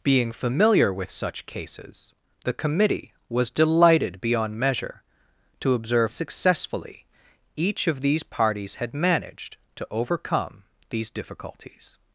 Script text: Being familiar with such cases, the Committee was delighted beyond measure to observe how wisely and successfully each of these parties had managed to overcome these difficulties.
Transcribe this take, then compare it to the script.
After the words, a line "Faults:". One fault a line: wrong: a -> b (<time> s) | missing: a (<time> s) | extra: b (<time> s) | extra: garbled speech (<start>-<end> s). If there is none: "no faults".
Being familiar with such cases, the Committee was delighted beyond measure to observe successfully each of these parties had managed to overcome these difficulties.
Faults:
missing: how wisely and (6.1 s)